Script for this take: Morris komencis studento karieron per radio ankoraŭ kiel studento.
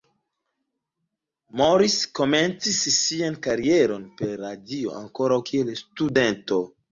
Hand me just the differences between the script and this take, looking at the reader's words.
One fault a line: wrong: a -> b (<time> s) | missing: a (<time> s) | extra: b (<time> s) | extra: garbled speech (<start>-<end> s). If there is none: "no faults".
wrong: studento -> sian (3.0 s)